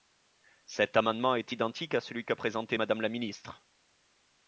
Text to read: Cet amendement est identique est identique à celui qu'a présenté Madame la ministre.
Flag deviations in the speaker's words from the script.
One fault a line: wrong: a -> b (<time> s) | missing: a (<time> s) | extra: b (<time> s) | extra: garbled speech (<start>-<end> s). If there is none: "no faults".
missing: est identique (1.9 s)